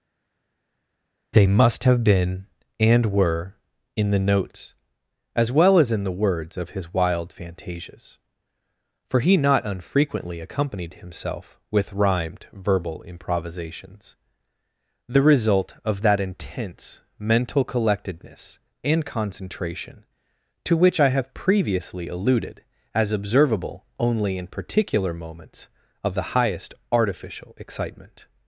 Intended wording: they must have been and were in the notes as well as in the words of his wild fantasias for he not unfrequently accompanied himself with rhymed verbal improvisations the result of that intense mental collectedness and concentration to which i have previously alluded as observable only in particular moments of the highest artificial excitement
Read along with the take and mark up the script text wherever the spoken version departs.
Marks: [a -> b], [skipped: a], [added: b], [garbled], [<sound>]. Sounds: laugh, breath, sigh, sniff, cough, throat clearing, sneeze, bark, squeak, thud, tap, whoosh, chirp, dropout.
they must have been and were in the notes as well as in the words of his wild fantasias for he not unfrequently accompanied himself with rhymed verbal improvisations the result of that intense mental collectedness and concentration to which i have previously alluded as observable only in particular moments of the highest artificial excitement